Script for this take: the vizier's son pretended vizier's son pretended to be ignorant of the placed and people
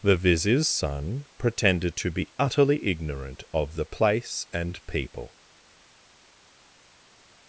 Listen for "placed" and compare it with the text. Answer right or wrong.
wrong